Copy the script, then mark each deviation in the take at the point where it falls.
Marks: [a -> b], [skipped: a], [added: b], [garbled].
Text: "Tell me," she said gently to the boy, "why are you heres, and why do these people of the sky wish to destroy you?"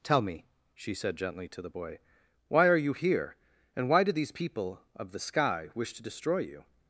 "Tell me," she said gently to the boy, "why are you [heres, -> here] and why do these people of the sky wish to destroy you?"